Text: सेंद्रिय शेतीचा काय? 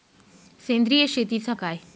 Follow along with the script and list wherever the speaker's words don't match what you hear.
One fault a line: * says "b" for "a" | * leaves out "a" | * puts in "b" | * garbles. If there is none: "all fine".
all fine